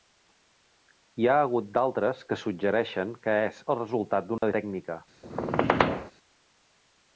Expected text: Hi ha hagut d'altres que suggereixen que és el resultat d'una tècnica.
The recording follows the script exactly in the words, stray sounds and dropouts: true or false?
false